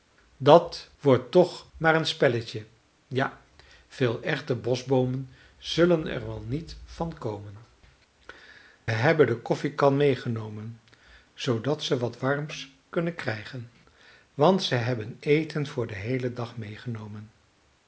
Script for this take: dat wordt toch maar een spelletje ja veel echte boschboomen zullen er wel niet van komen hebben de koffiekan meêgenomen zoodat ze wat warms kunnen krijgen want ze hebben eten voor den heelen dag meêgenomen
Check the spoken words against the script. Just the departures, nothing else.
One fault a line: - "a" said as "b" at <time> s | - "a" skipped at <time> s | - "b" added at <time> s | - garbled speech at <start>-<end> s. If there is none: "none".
none